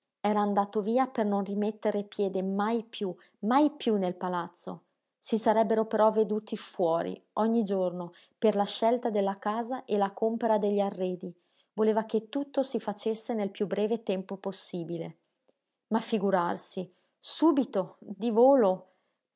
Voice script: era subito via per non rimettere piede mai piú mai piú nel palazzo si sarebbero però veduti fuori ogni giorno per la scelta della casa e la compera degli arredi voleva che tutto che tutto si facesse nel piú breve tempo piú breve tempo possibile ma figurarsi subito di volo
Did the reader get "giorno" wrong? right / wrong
right